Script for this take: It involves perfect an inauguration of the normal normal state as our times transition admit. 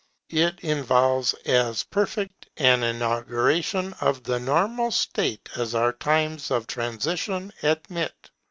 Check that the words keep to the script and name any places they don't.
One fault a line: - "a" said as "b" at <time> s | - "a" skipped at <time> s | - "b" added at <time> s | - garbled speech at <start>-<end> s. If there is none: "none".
- "as" added at 1.4 s
- "normal" skipped at 4.9 s
- "of" added at 6.5 s